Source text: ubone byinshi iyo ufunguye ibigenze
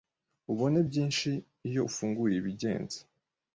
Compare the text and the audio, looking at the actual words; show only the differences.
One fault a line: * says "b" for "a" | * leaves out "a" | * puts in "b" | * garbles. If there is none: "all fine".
all fine